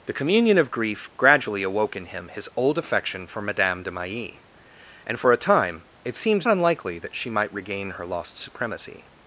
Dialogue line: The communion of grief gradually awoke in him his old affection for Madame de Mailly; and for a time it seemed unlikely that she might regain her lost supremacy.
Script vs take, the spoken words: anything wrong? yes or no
no